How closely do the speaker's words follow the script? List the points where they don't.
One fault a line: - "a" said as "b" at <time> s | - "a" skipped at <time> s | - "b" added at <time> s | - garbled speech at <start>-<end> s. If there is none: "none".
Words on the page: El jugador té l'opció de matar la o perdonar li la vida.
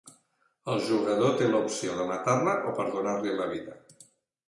none